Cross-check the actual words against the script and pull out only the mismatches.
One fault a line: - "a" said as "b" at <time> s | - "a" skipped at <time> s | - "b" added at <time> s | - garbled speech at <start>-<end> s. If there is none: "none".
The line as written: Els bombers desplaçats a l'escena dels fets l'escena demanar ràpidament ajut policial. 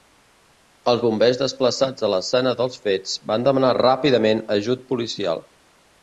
- "l'escena" said as "van" at 3.3 s